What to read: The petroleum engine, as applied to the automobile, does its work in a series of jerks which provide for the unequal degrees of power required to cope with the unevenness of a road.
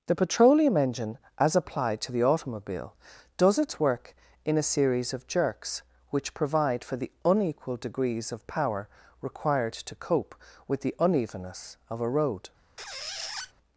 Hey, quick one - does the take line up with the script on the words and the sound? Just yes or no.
no